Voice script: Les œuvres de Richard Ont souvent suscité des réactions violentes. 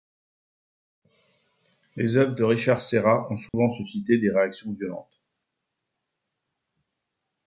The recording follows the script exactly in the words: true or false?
false